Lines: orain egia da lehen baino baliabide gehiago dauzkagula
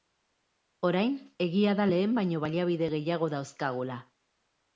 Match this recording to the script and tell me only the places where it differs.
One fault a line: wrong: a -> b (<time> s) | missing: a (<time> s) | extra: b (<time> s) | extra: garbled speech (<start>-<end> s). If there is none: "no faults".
no faults